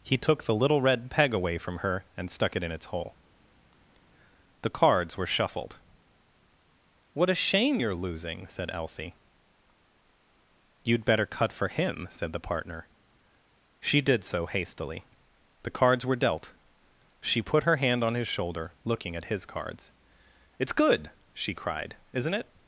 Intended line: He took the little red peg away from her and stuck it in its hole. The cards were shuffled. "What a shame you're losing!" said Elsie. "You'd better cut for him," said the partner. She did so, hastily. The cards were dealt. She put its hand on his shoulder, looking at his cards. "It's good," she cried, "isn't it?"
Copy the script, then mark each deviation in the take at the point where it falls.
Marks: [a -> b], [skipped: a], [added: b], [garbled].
He took the little red peg away from her and stuck it in its hole. The cards were shuffled. "What a shame you're losing!" said Elsie. "You'd better cut for him," said the partner. She did so, hastily. The cards were dealt. She put [its -> her] hand on his shoulder, looking at his cards. "It's good," she cried, "isn't it?"